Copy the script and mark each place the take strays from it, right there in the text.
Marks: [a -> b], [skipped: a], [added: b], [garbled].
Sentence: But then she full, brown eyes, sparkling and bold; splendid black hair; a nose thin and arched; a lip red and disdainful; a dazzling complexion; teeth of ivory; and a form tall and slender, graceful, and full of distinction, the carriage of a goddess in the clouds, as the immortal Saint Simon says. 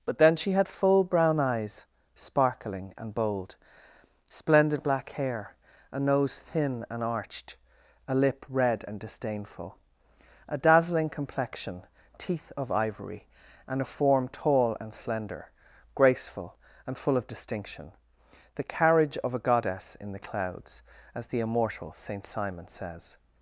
But then she [added: had] full, brown eyes, sparkling and bold; splendid black hair; a nose thin and arched; a lip red and disdainful; a dazzling complexion; teeth of ivory; and a form tall and slender, graceful, and full of distinction, the carriage of a goddess in the clouds, as the immortal Saint Simon says.